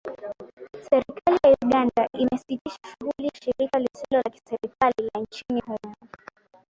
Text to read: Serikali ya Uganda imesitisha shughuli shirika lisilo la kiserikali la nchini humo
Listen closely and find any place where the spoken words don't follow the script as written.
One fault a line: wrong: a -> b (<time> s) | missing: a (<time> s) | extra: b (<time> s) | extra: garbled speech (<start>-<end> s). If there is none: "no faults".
no faults